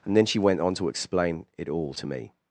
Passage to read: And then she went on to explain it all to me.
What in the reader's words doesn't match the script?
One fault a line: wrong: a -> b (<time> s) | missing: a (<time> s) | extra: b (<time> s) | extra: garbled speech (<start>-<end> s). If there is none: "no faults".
no faults